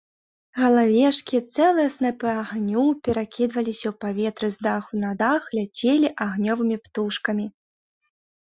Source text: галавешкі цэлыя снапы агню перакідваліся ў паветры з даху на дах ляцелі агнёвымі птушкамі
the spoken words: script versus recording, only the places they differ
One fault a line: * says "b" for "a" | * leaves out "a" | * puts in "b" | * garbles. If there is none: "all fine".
all fine